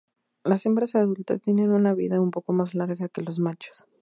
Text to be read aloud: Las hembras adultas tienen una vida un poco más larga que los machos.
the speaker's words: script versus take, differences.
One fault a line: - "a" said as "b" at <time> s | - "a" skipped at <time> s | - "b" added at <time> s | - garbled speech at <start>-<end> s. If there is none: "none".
none